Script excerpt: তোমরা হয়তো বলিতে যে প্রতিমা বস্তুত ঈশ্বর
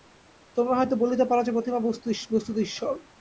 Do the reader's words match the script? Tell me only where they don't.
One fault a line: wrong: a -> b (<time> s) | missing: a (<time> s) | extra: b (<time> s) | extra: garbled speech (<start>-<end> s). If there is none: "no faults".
extra: পার (1.2 s)